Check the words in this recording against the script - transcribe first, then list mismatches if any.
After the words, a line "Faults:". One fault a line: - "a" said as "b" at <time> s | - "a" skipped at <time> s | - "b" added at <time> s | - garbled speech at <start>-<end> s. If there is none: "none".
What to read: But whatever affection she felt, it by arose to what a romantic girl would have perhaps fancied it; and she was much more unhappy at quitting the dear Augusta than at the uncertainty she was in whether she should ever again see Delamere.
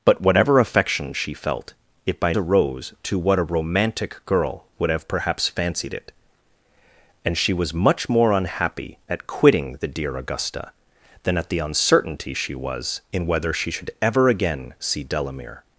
But whatever affection she felt, it by arose to what a romantic girl would have perhaps fancied it; and she was much more unhappy at quitting the dear Augusta than at the uncertainty she was in whether she should ever again see Delamere.
Faults:
none